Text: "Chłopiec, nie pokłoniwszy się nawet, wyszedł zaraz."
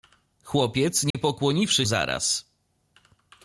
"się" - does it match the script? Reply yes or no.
no